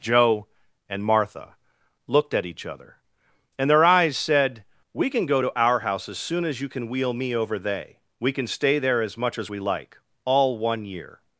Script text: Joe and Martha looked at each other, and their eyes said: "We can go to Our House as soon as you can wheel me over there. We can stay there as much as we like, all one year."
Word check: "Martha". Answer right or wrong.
right